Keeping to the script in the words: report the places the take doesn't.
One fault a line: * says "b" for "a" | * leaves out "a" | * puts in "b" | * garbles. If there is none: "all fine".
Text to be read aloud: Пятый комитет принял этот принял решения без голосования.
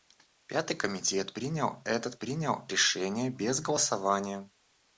all fine